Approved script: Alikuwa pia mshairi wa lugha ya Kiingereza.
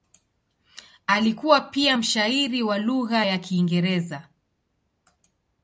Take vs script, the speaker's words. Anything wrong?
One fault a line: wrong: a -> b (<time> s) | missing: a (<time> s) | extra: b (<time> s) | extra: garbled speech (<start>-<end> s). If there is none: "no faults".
no faults